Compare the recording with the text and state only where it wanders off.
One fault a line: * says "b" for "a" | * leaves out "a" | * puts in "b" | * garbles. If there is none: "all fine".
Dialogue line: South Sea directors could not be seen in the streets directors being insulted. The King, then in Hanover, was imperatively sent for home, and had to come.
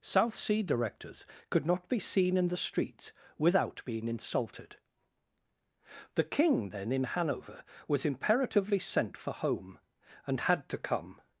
* says "without" for "directors"